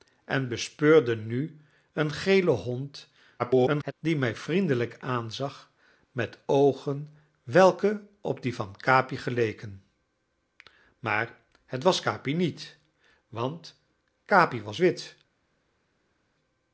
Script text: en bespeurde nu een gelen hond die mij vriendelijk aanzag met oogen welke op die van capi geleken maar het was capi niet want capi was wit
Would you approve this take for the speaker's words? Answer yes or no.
no